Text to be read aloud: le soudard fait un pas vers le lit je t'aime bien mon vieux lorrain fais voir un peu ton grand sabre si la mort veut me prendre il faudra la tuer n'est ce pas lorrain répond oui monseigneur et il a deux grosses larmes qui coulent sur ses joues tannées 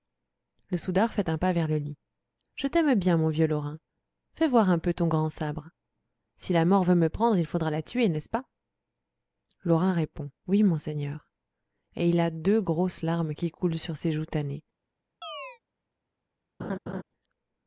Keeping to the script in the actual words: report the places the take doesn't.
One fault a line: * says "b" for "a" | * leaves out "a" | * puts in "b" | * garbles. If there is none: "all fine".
all fine